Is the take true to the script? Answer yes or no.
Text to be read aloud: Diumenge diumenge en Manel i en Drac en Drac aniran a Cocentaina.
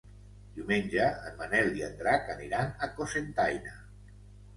no